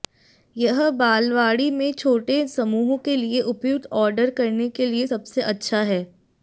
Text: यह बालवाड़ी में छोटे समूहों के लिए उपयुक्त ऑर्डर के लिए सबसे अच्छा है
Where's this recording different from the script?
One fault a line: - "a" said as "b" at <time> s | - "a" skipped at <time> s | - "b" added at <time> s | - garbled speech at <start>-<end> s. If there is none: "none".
- "करने" added at 4.4 s